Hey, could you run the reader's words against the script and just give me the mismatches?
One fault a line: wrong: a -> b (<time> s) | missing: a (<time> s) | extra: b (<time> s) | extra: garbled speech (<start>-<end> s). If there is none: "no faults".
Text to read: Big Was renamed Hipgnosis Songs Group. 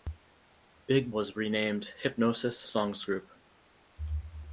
no faults